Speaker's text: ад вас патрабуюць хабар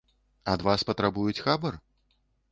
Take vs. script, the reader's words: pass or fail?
pass